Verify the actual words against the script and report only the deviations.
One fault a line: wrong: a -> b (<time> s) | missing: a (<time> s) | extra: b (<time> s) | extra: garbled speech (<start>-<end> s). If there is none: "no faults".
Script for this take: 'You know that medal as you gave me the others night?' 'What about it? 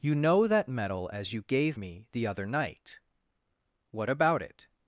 wrong: others -> other (2.2 s)